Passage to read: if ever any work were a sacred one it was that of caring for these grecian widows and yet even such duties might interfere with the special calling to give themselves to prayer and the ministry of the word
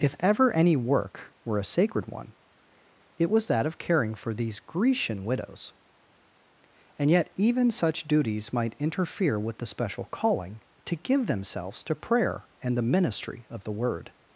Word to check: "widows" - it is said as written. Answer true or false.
true